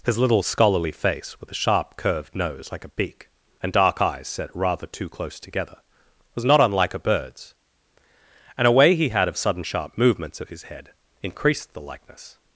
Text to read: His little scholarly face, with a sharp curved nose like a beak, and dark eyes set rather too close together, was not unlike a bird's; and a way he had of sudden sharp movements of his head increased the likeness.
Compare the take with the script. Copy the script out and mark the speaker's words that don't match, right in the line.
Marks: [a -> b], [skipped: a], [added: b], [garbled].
His little scholarly face, with a sharp curved nose like a beak, and dark eyes set rather too close together, was not unlike a bird's; and a way he had of sudden sharp movements of his head increased the likeness.